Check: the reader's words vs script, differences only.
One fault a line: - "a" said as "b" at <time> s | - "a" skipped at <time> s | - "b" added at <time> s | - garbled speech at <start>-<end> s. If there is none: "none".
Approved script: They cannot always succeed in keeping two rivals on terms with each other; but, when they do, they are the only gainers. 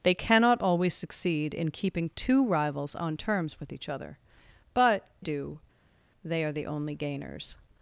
- "when they" skipped at 5.1 s